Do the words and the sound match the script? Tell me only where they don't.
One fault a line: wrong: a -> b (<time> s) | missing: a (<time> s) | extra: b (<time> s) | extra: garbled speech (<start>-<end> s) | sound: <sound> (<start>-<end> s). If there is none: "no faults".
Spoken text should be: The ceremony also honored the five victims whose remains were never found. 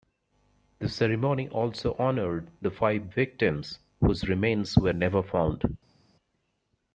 no faults